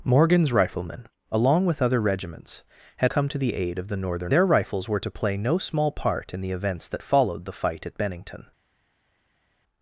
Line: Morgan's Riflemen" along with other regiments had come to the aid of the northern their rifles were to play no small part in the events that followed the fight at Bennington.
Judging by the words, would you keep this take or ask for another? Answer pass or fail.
pass